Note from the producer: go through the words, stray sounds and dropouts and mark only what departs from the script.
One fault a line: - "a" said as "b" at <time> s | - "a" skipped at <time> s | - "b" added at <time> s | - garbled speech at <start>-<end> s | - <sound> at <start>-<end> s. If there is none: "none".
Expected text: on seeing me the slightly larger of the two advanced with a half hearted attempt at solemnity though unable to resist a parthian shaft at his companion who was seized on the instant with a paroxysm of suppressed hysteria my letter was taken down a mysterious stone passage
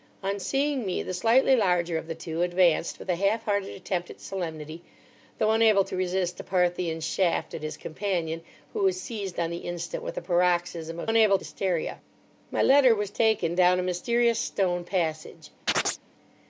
- "suppressed" said as "unable" at 11.1 s
- chirp at 15.7-16.0 s